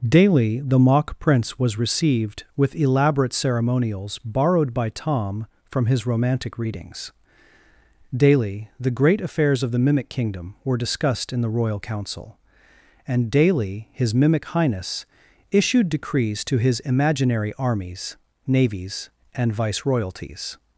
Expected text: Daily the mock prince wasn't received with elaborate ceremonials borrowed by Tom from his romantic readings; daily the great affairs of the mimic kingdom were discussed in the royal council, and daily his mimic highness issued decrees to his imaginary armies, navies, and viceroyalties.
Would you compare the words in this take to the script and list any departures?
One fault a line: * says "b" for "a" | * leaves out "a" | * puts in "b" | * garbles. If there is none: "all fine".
* says "was" for "wasn't"